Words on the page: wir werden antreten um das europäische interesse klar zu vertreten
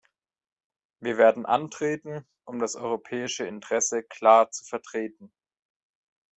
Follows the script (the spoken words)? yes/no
yes